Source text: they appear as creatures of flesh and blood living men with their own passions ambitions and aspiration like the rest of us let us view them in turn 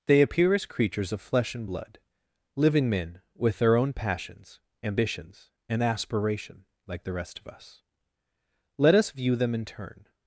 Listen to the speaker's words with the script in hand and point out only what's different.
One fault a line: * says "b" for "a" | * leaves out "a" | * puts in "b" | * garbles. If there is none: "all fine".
all fine